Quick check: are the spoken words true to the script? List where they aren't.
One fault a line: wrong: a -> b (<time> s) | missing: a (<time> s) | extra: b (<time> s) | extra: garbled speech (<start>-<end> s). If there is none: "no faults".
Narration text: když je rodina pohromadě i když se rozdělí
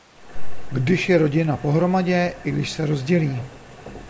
no faults